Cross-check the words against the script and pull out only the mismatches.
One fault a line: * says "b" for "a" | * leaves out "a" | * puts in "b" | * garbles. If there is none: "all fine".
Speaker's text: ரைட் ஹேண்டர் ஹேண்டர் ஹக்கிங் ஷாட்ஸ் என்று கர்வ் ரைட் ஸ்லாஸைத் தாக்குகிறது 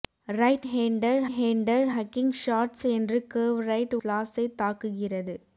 all fine